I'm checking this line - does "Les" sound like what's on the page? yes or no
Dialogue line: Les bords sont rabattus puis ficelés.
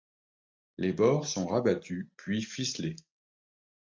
yes